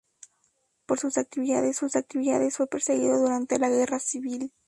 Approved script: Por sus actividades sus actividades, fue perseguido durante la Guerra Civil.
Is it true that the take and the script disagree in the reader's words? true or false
false